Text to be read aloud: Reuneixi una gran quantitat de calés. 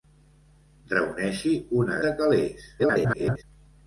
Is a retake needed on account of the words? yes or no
yes